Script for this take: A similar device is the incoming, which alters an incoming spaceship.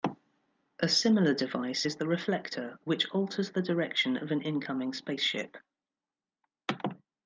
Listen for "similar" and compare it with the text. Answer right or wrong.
right